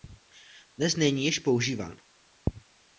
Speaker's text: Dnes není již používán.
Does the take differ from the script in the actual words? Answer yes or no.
no